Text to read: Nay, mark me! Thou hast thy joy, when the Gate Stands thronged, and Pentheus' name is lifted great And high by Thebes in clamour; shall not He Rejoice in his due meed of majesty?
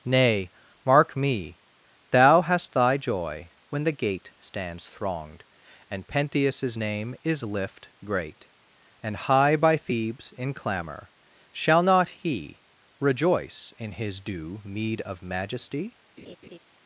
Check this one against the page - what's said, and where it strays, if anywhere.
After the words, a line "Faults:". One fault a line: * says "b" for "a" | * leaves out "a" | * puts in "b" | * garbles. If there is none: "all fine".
Nay, mark me! Thou hast thy joy, when the Gate Stands thronged, and Pentheus' name is lift great And high by Thebes in clamour; shall not He Rejoice in his due meed of majesty?
Faults:
* says "lift" for "lifted"